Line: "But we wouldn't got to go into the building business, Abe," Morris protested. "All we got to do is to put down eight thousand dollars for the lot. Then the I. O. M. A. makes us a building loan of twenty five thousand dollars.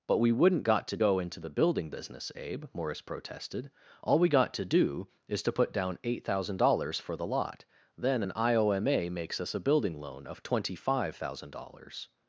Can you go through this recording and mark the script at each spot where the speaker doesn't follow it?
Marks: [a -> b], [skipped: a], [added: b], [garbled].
"But we wouldn't got to go into the building business, Abe," Morris protested. "All we got to do is to put down eight thousand dollars for the lot. Then [the -> an] I. O. M. A. makes us a building loan of twenty five thousand dollars.